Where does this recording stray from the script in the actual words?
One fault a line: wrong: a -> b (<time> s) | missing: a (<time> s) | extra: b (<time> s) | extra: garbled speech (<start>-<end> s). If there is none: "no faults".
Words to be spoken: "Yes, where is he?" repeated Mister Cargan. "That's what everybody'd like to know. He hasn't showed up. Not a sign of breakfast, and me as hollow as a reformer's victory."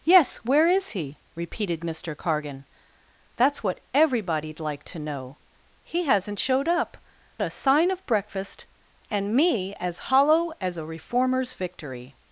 missing: Not (7.0 s)